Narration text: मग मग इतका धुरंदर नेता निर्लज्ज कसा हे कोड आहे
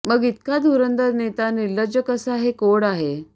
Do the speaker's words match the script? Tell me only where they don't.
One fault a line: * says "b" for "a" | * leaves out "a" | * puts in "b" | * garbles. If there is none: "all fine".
* leaves out "मग"